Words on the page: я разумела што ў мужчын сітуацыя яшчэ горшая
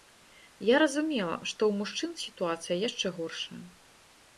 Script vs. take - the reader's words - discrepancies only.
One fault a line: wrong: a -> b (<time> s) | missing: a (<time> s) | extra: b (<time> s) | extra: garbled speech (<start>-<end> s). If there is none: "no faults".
no faults